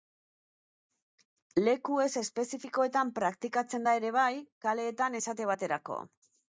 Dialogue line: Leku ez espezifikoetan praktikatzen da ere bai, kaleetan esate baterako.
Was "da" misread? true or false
false